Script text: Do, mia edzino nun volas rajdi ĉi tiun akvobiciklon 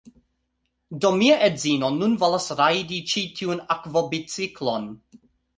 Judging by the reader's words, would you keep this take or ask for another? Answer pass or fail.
pass